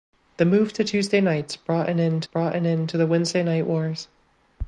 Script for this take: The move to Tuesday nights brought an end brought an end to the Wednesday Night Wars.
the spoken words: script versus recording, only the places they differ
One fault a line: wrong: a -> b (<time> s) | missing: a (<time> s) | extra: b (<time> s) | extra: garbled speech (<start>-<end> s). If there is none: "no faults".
no faults